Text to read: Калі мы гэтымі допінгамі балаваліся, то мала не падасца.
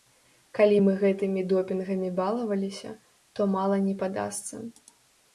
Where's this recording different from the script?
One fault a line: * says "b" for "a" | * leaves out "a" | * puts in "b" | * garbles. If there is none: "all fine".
all fine